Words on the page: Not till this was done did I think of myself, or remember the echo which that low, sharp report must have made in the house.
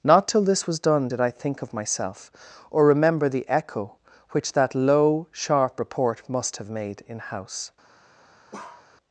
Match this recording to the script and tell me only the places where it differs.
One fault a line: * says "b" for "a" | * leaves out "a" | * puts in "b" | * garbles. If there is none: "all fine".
* leaves out "the"